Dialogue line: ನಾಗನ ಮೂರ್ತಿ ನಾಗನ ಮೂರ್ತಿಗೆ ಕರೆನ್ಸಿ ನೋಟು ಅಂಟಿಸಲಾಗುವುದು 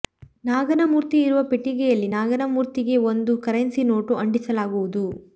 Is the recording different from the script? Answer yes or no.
yes